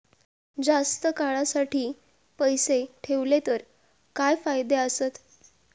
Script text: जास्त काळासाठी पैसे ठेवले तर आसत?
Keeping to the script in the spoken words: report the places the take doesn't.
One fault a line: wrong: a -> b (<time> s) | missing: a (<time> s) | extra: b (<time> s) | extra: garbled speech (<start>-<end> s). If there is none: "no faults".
extra: काय फायदे (4.1 s)